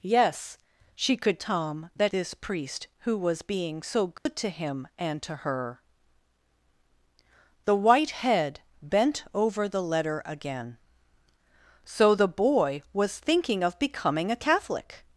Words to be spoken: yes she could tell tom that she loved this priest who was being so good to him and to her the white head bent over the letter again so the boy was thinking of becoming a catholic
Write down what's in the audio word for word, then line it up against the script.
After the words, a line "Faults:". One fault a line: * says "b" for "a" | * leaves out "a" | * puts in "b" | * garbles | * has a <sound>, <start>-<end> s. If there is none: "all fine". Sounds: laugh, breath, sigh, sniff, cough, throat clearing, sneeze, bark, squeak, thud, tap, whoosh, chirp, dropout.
yes she could tom that this priest who was being so good to him and to her the white head bent over the letter again so the boy was thinking of becoming a catholic
Faults:
* leaves out "tell"
* leaves out "she loved"
* has a dropout, 4.2-4.3 s